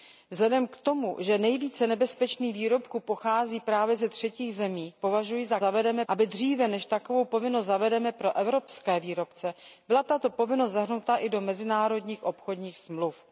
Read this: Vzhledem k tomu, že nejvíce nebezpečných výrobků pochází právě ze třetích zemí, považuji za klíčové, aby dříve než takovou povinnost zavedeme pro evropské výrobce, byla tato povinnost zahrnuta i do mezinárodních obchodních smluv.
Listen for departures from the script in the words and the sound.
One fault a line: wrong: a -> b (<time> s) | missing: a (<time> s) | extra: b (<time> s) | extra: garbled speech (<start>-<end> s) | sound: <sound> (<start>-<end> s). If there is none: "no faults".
wrong: klíčové -> zavedeme (5.6 s)